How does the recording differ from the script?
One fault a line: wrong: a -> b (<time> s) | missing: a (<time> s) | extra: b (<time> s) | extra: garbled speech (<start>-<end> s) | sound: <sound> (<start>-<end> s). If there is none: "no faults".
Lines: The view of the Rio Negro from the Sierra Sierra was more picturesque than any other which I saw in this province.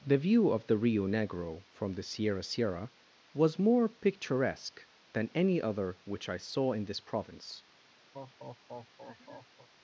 sound: laugh (8.1-9.7 s)